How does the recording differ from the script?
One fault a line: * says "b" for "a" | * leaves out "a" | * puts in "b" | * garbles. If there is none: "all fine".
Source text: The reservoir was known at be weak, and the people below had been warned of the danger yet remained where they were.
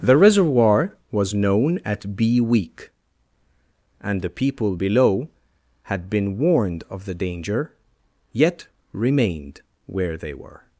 all fine